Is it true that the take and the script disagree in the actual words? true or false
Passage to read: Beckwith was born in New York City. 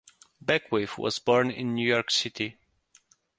false